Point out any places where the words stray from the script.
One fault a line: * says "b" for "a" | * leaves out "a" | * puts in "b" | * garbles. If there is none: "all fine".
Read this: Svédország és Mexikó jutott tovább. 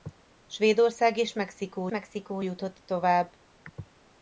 * puts in "Mexikó"